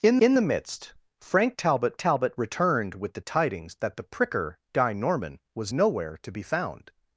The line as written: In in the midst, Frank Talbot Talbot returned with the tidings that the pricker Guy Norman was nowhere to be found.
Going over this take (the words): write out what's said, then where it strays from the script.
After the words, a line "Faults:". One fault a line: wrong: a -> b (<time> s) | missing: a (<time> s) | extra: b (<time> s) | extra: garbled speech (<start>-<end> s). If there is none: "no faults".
In in the midst, Frank Talbot Talbot returned with the tidings that the pricker Guy Norman was nowhere to be found.
Faults:
no faults